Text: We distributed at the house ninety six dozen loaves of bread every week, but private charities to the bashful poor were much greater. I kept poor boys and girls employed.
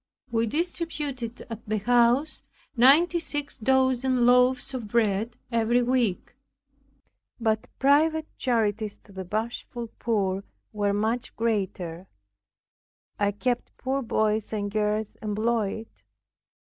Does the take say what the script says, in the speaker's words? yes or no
yes